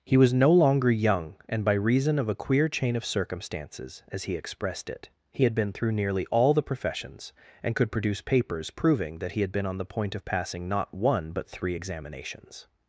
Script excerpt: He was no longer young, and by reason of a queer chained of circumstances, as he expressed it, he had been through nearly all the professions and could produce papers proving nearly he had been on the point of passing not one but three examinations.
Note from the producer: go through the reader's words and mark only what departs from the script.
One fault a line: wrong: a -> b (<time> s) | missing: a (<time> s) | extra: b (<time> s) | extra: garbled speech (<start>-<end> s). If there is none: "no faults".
wrong: chained -> chain (2.7 s)
wrong: nearly -> that (9.2 s)